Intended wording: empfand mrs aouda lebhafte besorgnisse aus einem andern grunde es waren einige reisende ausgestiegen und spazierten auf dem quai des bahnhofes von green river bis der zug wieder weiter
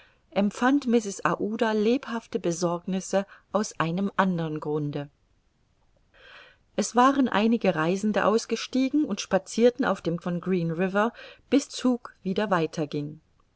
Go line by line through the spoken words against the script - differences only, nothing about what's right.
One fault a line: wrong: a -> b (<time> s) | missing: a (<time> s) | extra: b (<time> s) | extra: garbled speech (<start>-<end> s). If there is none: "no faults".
missing: quai des bahnhofes (10.2 s)
missing: der (11.7 s)